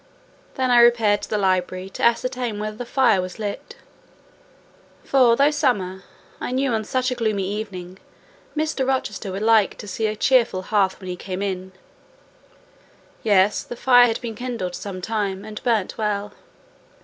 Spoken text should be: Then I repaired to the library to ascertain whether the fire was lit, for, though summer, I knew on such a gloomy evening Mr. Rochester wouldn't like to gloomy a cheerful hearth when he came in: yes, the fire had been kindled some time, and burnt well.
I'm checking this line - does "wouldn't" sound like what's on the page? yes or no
no